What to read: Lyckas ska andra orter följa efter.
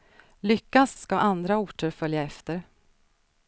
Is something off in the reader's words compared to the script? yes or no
no